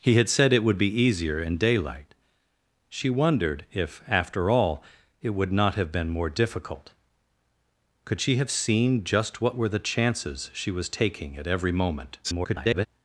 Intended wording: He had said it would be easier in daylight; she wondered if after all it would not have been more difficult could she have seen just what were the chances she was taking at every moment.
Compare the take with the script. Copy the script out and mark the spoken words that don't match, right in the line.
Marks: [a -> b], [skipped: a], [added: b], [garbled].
He had said it would be easier in daylight; she wondered if after all it would not have been more difficult could she have seen just what were the chances she was taking at every moment. [garbled]